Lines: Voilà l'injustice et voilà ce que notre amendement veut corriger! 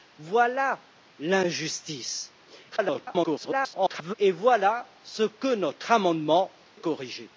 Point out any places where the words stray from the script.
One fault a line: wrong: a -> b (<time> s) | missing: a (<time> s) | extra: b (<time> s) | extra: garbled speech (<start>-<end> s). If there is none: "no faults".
extra: garbled speech (2.7-4.1 s)
missing: veut (6.5 s)